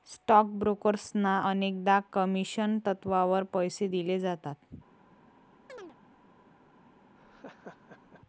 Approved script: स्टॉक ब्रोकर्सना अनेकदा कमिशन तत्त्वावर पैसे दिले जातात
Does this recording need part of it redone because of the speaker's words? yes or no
no